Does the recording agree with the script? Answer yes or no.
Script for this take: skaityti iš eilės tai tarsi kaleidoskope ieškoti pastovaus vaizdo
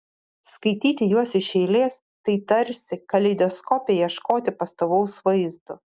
no